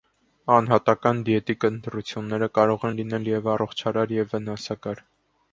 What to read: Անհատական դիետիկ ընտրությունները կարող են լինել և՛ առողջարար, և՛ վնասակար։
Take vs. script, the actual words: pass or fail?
pass